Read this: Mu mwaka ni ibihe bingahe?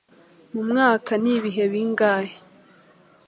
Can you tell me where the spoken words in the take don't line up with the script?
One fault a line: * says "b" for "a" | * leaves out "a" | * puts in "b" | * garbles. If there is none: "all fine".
all fine